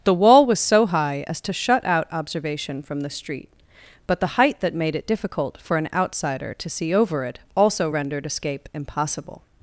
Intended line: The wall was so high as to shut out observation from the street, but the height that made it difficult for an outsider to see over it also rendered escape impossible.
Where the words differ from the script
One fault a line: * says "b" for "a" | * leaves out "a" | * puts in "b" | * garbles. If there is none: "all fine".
all fine